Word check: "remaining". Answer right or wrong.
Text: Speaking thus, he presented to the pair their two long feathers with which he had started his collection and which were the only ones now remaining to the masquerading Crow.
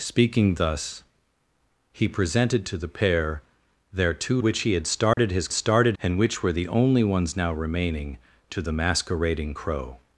right